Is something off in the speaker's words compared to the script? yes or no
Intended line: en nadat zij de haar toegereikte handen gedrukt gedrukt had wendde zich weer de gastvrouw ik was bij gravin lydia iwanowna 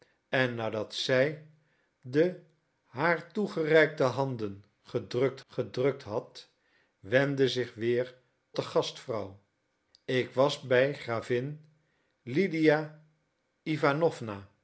no